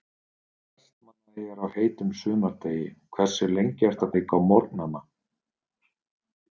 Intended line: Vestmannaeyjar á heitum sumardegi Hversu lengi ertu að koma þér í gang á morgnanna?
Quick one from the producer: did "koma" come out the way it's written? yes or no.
no